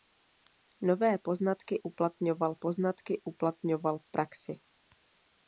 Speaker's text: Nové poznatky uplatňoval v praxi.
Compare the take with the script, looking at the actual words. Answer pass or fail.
fail